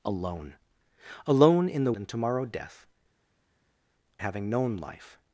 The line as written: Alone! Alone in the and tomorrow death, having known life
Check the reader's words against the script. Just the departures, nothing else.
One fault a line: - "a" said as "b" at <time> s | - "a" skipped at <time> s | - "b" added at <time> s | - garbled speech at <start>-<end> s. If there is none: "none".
none